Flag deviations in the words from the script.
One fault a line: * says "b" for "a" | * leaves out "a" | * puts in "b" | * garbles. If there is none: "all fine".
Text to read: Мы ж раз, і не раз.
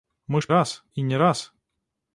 all fine